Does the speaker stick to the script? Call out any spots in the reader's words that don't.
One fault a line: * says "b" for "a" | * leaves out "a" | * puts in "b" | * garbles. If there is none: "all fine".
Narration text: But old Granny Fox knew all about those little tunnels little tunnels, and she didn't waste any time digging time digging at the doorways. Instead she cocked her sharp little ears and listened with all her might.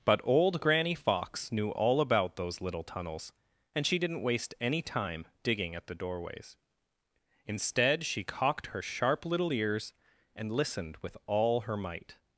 * leaves out "little tunnels"
* leaves out "time digging"